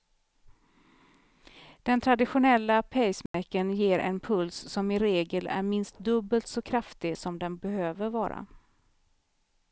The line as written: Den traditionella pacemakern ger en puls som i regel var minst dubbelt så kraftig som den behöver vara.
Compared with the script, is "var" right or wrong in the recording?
wrong